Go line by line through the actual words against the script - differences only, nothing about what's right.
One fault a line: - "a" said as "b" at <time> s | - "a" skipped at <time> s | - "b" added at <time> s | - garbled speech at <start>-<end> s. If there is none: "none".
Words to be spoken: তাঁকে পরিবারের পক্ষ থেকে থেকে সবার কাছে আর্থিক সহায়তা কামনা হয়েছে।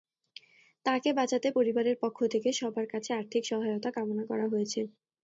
- "বাঁচাতে" added at 1.1 s
- "থেকে" skipped at 2.5 s
- "করা" added at 4.3 s